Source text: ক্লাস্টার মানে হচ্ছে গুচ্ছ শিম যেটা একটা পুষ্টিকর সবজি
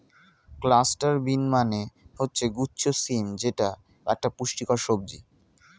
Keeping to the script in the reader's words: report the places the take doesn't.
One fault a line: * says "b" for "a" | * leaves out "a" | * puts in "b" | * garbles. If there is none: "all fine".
* puts in "বিন"